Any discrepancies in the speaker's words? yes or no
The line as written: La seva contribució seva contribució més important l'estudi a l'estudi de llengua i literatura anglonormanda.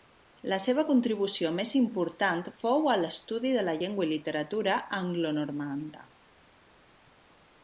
yes